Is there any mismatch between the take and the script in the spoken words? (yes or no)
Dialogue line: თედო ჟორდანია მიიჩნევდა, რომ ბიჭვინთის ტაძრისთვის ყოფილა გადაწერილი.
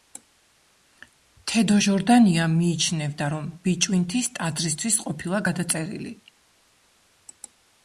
no